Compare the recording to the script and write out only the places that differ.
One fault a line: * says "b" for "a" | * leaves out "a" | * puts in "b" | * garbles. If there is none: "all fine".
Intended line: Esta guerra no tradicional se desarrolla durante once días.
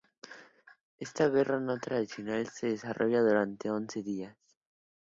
all fine